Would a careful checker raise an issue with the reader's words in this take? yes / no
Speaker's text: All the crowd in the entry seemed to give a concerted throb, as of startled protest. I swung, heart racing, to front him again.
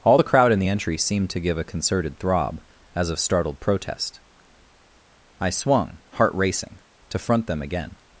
yes